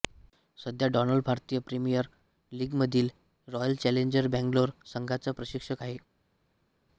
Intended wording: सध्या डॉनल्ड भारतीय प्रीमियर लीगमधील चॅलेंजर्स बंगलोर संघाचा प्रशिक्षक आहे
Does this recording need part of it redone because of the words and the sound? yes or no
yes